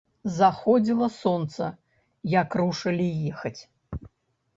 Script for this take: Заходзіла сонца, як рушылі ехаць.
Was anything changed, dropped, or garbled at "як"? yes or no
no